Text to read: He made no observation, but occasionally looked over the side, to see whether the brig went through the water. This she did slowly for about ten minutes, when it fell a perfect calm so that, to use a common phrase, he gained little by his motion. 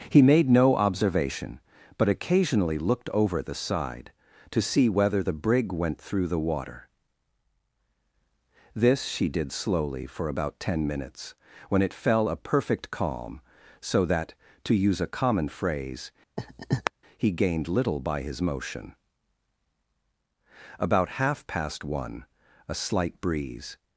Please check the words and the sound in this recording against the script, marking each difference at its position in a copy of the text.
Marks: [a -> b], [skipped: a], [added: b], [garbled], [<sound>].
He made no observation, but occasionally looked over the side, to see whether the brig went through the water. This she did slowly for about ten minutes, when it fell a perfect calm so that, to use a common phrase, [laugh] he gained little by his motion. [added: About half past one a slight breeze]